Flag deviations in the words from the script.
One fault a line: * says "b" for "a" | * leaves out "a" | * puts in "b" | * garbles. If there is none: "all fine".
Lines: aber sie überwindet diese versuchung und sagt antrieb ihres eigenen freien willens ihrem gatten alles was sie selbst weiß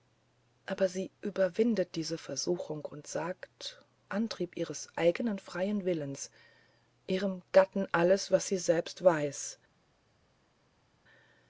all fine